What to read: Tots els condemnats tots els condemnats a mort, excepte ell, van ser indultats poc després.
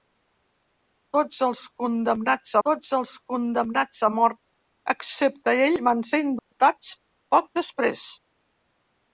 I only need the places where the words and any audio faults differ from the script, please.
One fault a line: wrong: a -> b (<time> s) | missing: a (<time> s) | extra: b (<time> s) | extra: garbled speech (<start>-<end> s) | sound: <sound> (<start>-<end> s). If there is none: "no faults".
sound: dropout (6.4-6.5 s)